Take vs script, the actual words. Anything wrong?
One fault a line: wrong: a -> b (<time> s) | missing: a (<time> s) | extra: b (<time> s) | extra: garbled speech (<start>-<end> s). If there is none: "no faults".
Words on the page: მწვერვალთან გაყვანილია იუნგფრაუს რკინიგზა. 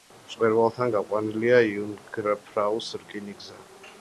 no faults